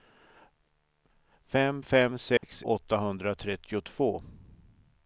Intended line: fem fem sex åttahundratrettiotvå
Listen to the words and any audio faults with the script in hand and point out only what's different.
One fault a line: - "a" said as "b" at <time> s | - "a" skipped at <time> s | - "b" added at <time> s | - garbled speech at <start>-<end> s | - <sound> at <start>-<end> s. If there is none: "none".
- dropout at 2.4-2.4 s